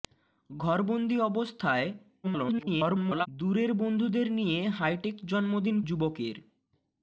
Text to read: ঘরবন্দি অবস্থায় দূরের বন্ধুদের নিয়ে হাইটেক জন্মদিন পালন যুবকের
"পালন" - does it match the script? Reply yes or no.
no